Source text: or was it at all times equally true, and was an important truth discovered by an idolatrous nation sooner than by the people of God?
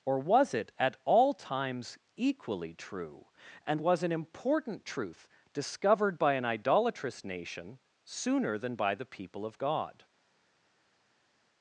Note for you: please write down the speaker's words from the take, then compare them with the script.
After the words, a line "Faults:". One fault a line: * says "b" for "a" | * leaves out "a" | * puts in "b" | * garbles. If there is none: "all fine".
or was it at all times equally true, and was an important truth discovered by an idolatrous nation sooner than by the people of God?
Faults:
all fine